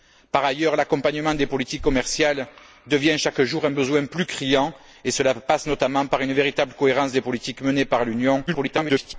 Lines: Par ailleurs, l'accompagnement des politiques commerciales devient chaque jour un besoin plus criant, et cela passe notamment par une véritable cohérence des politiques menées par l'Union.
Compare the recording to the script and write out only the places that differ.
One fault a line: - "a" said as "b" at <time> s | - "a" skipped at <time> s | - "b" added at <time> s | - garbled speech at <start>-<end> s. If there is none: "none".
- garbled speech at 8.5-9.1 s